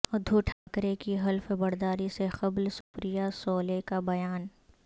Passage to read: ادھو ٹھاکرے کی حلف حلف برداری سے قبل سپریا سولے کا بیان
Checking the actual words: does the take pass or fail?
fail